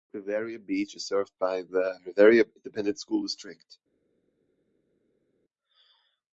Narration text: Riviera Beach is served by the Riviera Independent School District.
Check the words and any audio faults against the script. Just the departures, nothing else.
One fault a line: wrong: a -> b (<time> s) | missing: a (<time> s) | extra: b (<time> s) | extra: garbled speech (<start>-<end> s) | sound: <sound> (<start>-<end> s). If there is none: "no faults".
no faults